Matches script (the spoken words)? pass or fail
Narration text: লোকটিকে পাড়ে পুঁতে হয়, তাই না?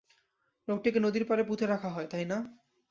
fail